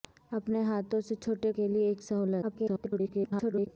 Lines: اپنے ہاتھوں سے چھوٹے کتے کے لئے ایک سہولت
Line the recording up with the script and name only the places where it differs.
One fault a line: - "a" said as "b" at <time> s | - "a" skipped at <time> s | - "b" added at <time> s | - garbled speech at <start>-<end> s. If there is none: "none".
- "کتے" skipped at 1.5 s
- garbled speech at 2.4-3.7 s